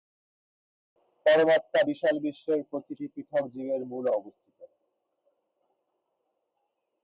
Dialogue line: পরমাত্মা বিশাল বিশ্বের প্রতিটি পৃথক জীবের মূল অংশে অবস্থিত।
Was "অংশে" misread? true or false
true